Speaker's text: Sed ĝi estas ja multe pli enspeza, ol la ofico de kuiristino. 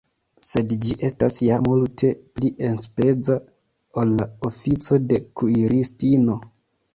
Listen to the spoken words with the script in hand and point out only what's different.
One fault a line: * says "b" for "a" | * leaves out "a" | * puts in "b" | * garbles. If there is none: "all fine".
all fine